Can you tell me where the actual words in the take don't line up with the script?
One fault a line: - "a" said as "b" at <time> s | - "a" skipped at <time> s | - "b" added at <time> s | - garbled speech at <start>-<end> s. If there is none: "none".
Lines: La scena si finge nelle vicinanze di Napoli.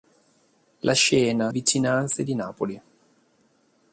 - "si finge nelle" skipped at 1.5 s